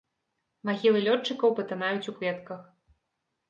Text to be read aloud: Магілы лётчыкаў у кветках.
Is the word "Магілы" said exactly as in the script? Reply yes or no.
yes